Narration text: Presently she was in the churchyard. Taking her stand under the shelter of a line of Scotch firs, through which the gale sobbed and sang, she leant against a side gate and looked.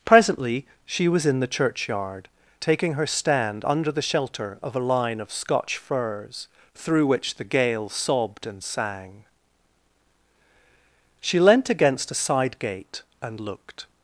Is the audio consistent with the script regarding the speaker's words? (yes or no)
yes